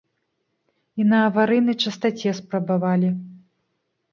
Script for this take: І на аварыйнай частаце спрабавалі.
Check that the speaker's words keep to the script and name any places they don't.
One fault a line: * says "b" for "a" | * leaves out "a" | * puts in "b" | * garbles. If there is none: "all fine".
all fine